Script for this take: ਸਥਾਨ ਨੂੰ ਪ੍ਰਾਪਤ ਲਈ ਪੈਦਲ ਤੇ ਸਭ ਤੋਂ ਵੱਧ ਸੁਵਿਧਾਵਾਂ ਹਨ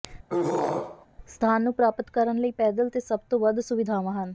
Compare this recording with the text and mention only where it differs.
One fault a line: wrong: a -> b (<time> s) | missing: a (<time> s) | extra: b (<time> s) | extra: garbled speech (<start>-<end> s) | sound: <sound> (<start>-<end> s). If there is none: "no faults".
sound: throat clearing (0.3-1.1 s)
extra: ਕਰਨ (2.1 s)